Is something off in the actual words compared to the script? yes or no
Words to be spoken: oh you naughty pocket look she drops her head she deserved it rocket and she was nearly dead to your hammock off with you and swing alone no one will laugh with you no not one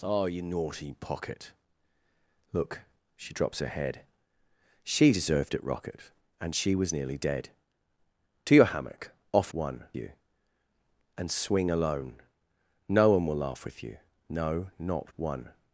yes